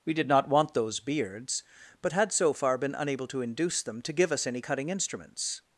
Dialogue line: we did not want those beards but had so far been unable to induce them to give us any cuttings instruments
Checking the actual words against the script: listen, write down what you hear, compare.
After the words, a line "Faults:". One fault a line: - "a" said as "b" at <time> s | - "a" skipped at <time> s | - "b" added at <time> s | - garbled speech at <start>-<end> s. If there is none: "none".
we did not want those beards but had so far been unable to induce them to give us any cutting instruments
Faults:
- "cuttings" said as "cutting" at 4.6 s